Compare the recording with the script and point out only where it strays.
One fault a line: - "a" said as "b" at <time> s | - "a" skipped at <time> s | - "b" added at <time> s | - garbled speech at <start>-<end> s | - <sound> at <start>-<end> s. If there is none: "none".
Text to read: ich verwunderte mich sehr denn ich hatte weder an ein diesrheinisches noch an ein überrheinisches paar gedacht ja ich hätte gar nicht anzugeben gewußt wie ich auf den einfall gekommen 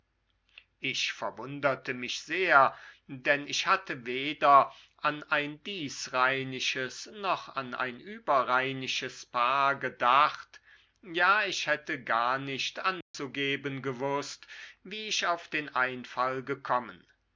- dropout at 13.0-13.1 s